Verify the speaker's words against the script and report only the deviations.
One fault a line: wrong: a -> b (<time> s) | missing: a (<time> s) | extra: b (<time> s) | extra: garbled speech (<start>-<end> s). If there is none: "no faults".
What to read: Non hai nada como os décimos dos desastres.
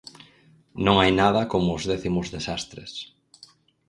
missing: dos (2.3 s)